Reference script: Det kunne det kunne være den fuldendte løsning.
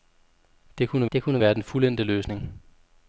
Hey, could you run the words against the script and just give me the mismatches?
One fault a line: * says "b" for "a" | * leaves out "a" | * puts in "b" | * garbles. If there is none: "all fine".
all fine